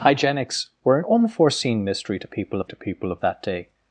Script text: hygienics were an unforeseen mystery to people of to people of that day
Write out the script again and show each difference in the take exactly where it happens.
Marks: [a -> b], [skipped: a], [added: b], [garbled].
hygienics were an unforeseen mystery to people of to people of that day